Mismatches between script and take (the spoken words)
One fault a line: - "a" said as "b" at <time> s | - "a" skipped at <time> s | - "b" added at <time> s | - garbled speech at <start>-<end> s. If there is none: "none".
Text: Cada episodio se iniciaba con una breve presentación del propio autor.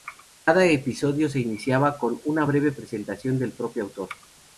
none